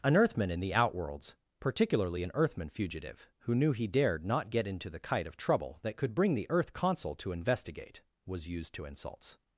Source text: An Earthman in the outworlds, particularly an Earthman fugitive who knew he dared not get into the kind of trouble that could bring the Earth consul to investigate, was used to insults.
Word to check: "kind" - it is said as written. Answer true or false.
false